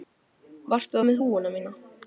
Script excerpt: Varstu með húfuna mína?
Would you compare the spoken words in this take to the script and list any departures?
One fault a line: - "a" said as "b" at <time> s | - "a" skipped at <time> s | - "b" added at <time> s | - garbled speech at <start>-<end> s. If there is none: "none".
none